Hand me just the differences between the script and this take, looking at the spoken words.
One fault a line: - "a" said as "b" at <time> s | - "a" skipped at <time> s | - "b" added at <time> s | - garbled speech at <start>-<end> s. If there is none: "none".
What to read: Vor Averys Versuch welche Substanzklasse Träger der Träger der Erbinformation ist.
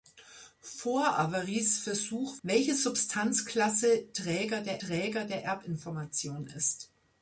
none